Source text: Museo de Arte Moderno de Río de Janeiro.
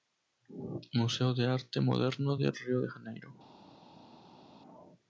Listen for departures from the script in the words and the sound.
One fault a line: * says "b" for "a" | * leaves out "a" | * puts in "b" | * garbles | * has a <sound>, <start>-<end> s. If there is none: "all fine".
all fine